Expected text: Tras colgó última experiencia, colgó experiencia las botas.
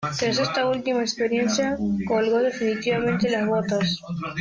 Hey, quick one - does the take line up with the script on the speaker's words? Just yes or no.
no